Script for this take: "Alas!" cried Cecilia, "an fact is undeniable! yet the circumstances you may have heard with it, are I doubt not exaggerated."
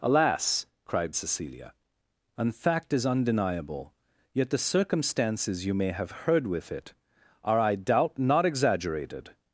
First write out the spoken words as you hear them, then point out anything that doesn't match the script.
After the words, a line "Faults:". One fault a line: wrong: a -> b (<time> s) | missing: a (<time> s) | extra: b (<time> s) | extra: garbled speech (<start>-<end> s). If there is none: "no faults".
"Alas!" cried Cecilia, "an fact is undeniable! yet the circumstances you may have heard with it, are I doubt not exaggerated."
Faults:
no faults